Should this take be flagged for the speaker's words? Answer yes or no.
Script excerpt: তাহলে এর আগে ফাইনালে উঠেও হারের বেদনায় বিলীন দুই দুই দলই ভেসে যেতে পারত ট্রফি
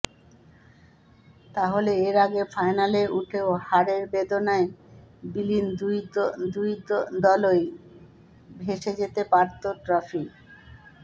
no